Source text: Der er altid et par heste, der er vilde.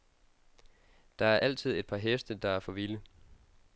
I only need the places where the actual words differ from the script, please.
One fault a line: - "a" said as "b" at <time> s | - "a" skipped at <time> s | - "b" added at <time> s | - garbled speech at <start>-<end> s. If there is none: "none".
- "for" added at 2.6 s